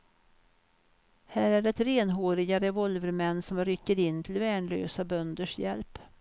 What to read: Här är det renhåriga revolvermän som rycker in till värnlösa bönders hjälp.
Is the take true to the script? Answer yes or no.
yes